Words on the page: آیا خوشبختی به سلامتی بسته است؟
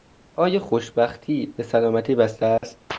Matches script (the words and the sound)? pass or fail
fail